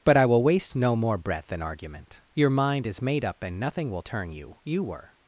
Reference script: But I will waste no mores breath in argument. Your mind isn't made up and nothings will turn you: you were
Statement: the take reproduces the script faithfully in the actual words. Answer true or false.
false